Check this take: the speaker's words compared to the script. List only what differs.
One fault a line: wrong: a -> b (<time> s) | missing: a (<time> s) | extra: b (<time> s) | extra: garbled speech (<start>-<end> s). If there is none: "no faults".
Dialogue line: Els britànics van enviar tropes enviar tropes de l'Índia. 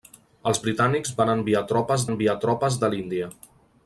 no faults